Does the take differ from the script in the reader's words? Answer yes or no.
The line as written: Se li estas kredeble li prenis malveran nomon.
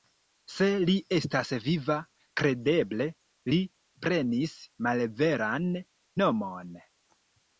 yes